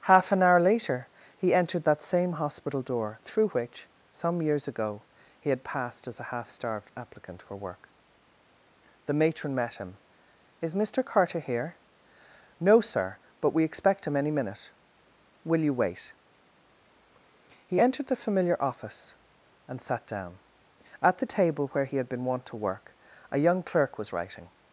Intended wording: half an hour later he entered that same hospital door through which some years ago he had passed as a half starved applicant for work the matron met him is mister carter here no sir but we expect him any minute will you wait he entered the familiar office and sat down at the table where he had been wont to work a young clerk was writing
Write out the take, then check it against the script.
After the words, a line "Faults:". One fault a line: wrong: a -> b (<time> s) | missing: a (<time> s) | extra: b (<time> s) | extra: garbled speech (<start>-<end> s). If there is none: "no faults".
half an hour later he entered that same hospital door through which some years ago he had passed as a half starved applicant for work the matron met him is mister carter here no sir but we expect him any minute will you wait he entered the familiar office and sat down at the table where he had been wont to work a young clerk was writing
Faults:
no faults